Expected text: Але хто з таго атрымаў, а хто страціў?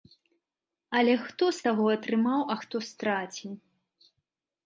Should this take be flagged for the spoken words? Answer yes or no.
no